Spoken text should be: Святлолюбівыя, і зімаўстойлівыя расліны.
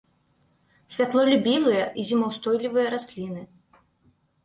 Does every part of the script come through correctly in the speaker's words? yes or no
yes